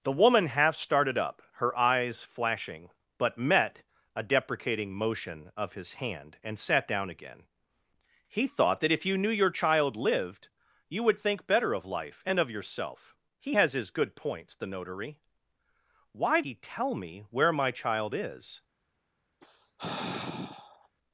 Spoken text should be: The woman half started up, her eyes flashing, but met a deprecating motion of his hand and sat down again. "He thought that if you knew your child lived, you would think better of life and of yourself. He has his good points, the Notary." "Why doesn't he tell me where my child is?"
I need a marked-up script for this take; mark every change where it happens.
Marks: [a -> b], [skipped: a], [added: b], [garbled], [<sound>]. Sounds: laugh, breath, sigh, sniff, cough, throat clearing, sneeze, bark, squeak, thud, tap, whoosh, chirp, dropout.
The woman half started up, her eyes flashing, but met a deprecating motion of his hand and sat down again. "He thought that if you knew your child lived, you would think better of life and of yourself. He has his good points, the Notary." "Why [skipped: doesn't] he tell me where my child is?" [sigh]